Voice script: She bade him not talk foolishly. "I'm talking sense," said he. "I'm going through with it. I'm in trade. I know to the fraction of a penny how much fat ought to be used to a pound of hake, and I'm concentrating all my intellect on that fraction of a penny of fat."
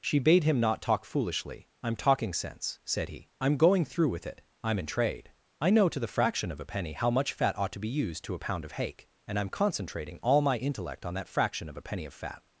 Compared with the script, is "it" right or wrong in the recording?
right